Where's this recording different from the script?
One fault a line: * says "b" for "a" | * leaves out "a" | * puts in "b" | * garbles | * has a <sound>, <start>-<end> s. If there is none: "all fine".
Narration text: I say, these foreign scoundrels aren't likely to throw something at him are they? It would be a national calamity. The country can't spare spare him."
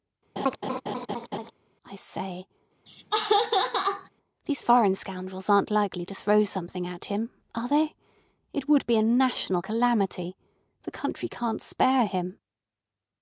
* has a laugh, 0.4-1.5 s
* has a laugh, 2.9-4.1 s
* leaves out "spare"